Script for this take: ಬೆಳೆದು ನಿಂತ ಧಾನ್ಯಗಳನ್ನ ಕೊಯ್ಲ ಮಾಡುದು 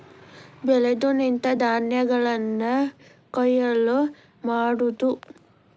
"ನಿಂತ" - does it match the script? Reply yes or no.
yes